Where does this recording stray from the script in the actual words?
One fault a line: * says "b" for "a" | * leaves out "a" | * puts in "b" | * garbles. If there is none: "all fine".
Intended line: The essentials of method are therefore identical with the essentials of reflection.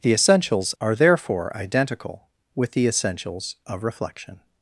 * leaves out "of method"